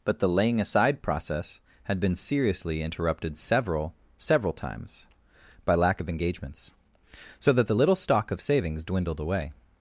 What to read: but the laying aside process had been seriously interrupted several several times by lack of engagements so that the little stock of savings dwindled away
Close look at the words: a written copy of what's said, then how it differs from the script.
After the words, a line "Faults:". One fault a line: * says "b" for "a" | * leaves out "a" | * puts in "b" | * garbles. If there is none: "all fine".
but the laying aside process had been seriously interrupted several several times by lack of engagements so that the little stock of savings dwindled away
Faults:
all fine